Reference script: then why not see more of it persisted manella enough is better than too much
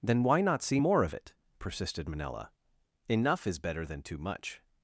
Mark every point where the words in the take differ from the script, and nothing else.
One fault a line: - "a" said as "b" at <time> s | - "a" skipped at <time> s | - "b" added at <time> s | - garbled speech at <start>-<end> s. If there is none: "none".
none